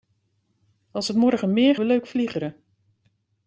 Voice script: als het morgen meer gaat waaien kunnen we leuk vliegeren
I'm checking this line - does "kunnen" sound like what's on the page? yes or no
no